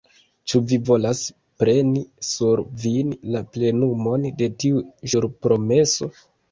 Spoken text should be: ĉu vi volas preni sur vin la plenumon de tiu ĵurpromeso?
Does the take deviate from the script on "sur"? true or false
false